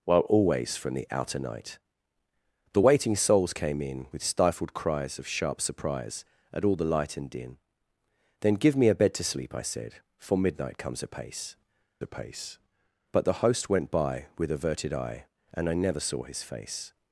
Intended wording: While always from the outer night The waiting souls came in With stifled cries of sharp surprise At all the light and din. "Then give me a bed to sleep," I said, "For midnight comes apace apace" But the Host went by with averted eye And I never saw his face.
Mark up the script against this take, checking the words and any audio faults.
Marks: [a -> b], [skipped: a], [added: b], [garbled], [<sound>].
While always from the outer night The waiting souls came in With stifled cries of sharp surprise At all the light and din. "Then give me a bed to sleep," I said, "For midnight comes apace apace" But the Host went by with averted eye And I never saw his face.